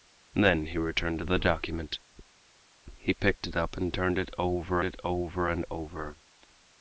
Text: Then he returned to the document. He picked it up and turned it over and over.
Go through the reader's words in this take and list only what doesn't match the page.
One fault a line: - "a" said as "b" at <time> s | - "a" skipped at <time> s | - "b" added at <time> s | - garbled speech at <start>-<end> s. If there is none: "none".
- "it over" added at 4.8 s